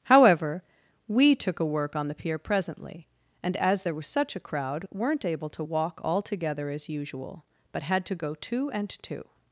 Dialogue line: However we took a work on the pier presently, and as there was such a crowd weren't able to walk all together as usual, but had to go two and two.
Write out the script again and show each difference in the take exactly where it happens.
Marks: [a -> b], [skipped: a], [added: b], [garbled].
However we took a work on the pier presently, and as there was such a crowd weren't able to walk all together as usual, but had to go two and two.